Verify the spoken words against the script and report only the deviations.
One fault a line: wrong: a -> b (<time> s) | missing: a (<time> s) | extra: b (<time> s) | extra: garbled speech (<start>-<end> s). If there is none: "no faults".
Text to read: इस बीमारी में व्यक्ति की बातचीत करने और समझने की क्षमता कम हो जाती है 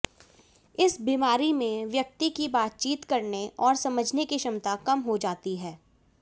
no faults